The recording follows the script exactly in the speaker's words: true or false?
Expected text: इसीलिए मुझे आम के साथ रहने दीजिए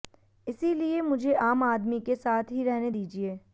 false